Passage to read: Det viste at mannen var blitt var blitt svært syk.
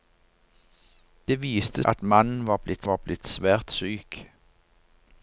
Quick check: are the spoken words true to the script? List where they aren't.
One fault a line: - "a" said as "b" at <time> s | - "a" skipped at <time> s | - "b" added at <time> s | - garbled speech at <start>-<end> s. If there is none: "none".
none